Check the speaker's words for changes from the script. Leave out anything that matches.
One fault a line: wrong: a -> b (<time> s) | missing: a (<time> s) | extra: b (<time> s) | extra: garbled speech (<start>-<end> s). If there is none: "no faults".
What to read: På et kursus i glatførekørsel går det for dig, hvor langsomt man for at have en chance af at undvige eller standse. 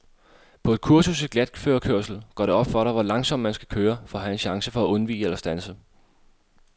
extra: op (2.5 s)
extra: skal køre (3.5 s)
wrong: af -> for (4.7 s)